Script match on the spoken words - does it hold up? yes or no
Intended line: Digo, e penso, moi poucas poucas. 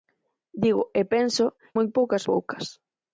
yes